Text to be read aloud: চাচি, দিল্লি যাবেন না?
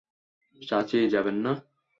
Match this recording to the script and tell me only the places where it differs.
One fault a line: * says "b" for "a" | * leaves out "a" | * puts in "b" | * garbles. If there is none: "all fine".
* leaves out "দিল্লি"